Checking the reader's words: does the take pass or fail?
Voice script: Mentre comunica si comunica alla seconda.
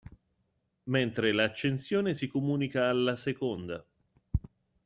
fail